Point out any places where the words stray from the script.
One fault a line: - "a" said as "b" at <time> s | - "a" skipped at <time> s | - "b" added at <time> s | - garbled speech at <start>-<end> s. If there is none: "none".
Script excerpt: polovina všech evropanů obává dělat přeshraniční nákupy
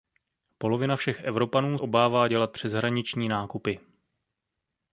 none